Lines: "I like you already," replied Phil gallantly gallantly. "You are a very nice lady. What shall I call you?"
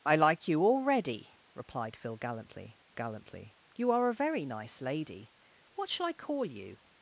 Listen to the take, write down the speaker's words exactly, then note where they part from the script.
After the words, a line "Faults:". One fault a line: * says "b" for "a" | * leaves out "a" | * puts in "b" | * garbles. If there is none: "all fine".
"I like you already," replied Phil gallantly gallantly. "You are a very nice lady. What shall I call you?"
Faults:
all fine